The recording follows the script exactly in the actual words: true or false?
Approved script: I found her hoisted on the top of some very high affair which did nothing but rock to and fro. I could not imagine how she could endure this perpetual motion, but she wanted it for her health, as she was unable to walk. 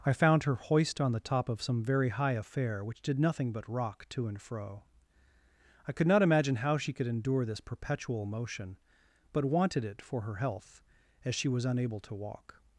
false